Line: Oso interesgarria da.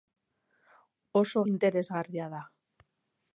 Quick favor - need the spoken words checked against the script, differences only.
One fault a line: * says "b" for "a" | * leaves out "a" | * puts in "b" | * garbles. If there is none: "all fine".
all fine